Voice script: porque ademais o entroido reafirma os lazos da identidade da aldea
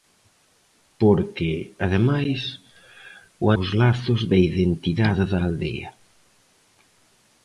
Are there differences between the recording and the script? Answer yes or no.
yes